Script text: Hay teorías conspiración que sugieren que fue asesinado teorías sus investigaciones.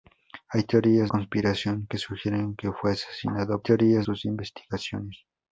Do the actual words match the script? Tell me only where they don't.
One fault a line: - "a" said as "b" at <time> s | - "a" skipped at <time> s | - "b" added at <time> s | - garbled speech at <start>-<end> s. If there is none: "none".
none